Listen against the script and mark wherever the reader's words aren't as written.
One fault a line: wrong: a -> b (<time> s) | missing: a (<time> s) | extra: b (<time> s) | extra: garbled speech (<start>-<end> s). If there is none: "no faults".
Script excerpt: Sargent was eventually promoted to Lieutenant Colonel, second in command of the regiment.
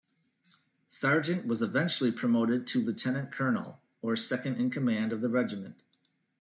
extra: or (4.0 s)